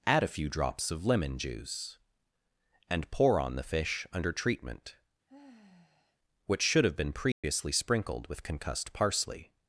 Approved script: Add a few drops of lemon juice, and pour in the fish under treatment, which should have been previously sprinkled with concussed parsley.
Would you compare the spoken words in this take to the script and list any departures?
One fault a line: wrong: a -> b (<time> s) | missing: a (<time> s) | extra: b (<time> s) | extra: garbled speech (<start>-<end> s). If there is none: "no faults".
wrong: in -> on (3.4 s)